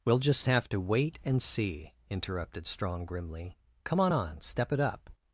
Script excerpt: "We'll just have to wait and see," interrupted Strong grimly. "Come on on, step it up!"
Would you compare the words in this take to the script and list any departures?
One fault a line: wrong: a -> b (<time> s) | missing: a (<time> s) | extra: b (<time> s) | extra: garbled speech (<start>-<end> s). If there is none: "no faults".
no faults